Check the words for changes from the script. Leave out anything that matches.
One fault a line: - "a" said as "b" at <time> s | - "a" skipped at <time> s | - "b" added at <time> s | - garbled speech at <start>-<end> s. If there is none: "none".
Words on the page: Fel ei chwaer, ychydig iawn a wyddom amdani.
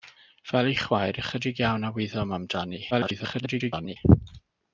- garbled speech at 2.9-4.0 s